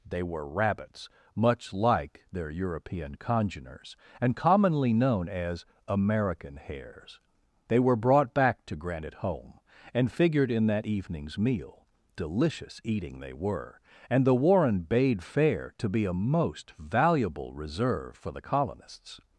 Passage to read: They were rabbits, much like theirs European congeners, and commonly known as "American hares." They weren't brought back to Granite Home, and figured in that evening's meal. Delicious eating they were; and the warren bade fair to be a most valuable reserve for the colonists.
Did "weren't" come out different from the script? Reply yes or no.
yes